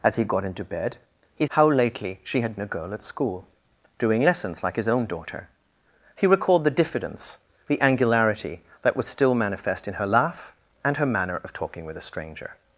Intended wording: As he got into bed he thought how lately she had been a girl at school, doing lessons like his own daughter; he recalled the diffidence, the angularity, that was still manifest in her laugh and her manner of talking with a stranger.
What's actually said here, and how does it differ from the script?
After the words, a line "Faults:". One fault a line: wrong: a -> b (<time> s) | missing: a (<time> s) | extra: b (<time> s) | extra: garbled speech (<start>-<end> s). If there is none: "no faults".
As he got into bed he how lately she had a girl at school, doing lessons like his own daughter; he recalled the diffidence, the angularity, that was still manifest in her laugh and her manner of talking with a stranger.
Faults:
missing: thought (1.4 s)
missing: been (2.6 s)